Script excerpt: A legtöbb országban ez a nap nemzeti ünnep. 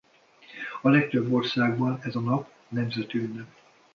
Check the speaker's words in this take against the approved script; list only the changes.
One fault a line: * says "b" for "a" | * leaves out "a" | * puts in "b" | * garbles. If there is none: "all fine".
all fine